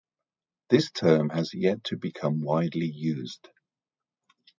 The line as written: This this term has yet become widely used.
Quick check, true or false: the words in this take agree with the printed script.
false